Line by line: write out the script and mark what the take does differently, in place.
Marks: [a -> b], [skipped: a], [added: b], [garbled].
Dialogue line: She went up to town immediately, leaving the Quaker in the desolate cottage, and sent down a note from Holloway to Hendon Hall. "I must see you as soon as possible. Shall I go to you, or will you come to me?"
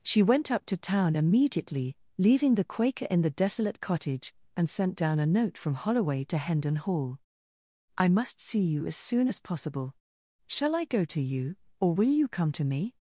She went up to town immediately, leaving the Quaker in the desolate cottage, and sent down a note from Holloway to Hendon Hall. "I must see you as soon as possible. Shall I go to you, or will you come to me?"